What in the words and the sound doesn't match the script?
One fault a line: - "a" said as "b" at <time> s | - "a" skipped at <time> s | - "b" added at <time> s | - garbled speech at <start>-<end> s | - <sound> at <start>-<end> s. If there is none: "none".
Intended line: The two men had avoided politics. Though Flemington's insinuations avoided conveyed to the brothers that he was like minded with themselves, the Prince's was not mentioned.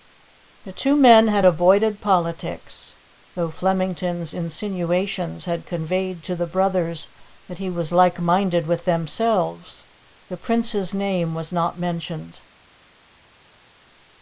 - "avoided" said as "had" at 5.4 s
- "name" added at 11.0 s